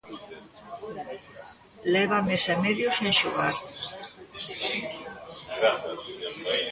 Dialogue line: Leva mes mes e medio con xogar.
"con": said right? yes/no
no